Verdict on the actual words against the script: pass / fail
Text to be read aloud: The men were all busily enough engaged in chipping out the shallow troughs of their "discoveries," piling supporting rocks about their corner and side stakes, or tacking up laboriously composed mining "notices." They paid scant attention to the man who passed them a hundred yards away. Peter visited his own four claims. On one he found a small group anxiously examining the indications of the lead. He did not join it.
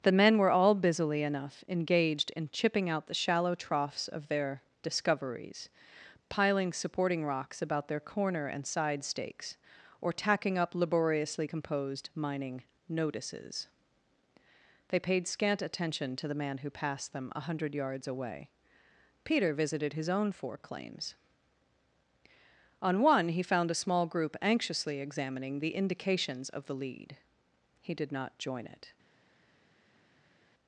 pass